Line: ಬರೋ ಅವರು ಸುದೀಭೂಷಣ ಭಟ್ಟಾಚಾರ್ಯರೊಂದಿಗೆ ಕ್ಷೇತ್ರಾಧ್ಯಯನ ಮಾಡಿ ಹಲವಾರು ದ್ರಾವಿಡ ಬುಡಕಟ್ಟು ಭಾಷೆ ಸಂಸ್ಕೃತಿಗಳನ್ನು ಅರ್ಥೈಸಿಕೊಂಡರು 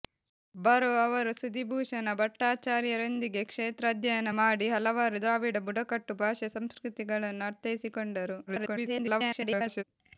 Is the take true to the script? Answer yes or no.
no